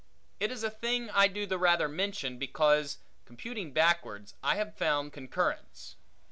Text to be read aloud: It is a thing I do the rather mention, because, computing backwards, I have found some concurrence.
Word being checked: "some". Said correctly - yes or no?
no